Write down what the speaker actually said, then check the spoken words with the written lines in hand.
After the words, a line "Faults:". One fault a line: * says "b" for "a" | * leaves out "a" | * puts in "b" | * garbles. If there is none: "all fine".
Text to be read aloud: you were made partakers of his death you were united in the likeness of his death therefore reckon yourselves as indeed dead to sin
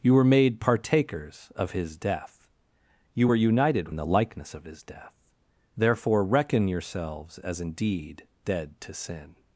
you were made partakers of his death you were united in the likeness of his death therefore reckon yourselves as indeed dead to sin
Faults:
all fine